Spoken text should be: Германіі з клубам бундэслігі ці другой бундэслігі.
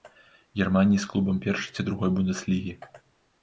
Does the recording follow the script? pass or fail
fail